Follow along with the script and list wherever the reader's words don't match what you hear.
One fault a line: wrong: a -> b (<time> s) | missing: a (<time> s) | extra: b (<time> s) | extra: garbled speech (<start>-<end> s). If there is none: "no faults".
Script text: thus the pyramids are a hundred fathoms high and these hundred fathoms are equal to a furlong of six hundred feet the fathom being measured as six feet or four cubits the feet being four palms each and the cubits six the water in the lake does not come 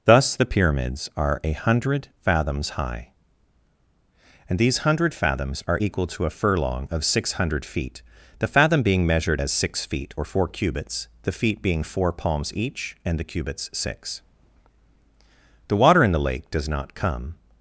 no faults